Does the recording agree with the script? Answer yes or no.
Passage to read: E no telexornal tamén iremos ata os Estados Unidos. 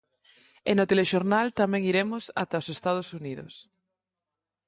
yes